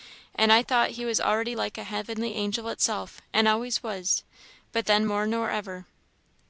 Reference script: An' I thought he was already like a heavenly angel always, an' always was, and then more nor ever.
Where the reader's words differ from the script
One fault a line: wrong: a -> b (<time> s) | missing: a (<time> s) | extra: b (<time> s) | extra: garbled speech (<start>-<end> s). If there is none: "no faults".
wrong: always -> itself (2.7 s)
wrong: and -> but (4.7 s)